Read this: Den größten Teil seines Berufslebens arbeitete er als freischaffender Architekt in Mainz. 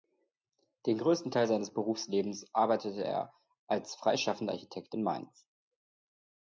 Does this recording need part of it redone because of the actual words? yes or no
no